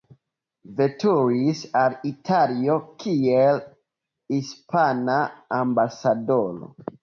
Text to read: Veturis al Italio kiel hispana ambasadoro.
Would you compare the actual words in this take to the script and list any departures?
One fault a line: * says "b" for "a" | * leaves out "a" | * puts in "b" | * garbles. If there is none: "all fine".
all fine